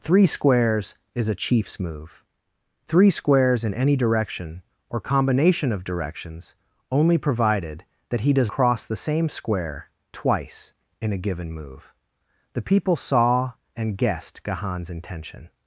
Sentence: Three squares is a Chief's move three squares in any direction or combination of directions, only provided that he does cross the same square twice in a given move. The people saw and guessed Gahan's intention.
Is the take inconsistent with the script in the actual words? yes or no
no